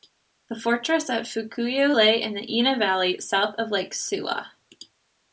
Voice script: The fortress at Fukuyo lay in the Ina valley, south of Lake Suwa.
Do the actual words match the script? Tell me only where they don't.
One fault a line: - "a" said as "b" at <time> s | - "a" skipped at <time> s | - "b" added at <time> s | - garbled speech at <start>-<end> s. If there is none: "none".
none